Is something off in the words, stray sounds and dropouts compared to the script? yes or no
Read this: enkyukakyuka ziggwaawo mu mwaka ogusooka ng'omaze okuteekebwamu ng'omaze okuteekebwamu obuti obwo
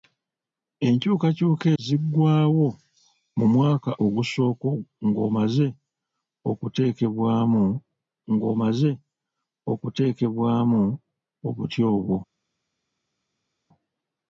no